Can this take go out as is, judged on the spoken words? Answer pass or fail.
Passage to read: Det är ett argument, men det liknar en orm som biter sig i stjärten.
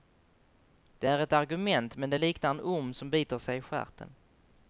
pass